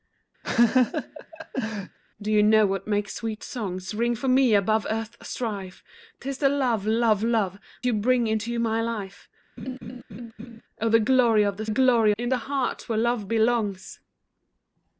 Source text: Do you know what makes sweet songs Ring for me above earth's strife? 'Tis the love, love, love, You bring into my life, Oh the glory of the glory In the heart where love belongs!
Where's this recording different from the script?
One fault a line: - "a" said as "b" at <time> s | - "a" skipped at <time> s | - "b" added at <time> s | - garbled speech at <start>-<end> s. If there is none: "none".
none